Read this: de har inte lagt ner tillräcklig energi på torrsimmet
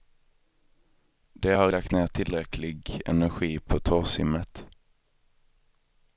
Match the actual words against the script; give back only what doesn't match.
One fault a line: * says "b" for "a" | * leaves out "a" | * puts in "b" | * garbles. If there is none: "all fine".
* leaves out "inte"